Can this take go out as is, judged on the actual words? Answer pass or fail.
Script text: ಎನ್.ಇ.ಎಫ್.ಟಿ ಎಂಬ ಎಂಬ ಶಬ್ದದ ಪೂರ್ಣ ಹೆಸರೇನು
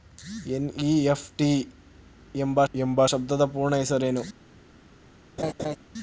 pass